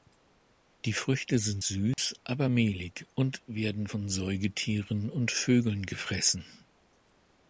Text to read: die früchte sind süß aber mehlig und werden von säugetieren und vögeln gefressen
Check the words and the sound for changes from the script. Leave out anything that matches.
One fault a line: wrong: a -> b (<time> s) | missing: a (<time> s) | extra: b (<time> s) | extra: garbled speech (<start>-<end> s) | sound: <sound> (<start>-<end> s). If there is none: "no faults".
sound: dropout (1.9-2.0 s)